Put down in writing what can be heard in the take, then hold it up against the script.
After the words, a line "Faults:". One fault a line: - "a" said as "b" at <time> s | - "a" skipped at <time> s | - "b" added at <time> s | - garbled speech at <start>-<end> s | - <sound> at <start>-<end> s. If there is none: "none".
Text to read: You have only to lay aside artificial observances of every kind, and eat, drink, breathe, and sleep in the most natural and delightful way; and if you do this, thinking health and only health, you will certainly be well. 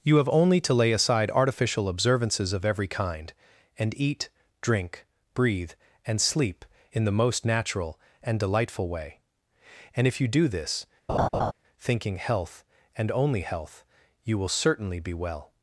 You have only to lay aside artificial observances of every kind, and eat, drink, breathe, and sleep in the most natural and delightful way; and if you do this, thinking health and only health, you will certainly be well.
Faults:
- laugh at 11.1-11.5 s